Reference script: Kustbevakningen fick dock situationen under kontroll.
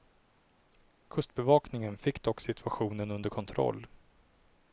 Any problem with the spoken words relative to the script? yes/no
no